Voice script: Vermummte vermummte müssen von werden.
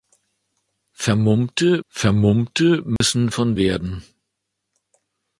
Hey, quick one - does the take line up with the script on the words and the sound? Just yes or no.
no